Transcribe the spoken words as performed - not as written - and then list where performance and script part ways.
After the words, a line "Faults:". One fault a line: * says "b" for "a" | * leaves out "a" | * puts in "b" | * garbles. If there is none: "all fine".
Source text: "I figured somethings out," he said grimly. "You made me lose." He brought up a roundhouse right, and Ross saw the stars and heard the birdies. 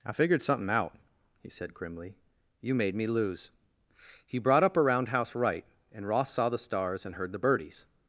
"I figured something out," he said grimly. "You made me lose." He brought up a roundhouse right, and Ross saw the stars and heard the birdies.
Faults:
* says "something" for "somethings"